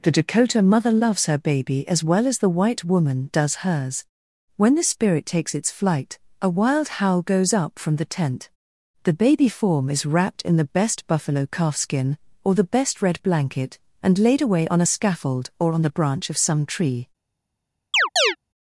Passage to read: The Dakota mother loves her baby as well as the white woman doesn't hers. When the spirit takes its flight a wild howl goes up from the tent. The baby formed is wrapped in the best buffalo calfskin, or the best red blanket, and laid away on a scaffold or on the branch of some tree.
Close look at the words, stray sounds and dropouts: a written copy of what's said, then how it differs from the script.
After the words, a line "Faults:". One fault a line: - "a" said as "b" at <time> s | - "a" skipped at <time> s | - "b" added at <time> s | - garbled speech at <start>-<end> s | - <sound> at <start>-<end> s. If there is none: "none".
The Dakota mother loves her baby as well as the white woman does hers. When the spirit takes its flight a wild howl goes up from the tent. The baby form is wrapped in the best buffalo calfskin, or the best red blanket, and laid away on a scaffold or on the branch of some tree.
Faults:
- "doesn't" said as "does" at 3.3 s
- "formed" said as "form" at 9.5 s
- chirp at 17.9-18.4 s